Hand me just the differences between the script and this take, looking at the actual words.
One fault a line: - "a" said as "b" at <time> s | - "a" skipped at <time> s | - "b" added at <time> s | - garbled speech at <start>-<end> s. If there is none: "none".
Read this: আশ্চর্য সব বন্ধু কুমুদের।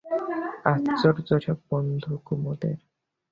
none